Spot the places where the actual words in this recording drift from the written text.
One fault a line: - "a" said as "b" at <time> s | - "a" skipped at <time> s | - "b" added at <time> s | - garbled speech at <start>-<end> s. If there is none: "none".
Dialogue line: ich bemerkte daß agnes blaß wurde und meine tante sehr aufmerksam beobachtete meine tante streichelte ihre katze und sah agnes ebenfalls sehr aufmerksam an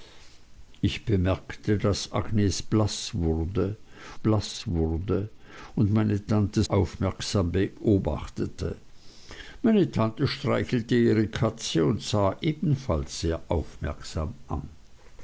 - "blaß wurde" added at 4.2 s
- "sehr" skipped at 6.6 s
- "agnes" skipped at 12.4 s